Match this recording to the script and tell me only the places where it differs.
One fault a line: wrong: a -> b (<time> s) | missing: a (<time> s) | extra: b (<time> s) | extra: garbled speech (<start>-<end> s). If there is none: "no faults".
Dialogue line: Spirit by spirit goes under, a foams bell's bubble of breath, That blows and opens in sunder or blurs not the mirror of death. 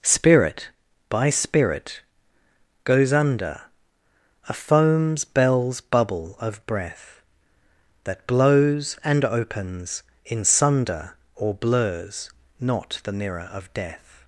no faults